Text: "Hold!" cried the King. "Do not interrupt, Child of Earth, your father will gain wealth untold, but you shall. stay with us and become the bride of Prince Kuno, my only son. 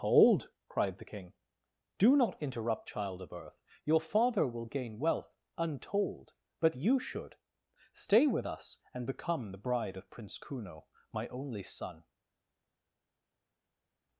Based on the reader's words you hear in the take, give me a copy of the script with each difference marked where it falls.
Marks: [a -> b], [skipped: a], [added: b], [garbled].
"Hold!" cried the King. "Do not interrupt, Child of Earth, your father will gain wealth untold, but you [shall. -> should] stay with us and become the bride of Prince Kuno, my only son.